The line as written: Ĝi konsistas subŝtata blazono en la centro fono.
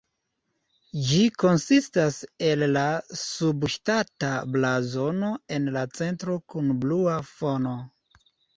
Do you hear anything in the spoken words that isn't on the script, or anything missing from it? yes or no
yes